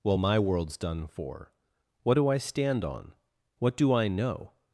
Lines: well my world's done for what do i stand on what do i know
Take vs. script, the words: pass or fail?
pass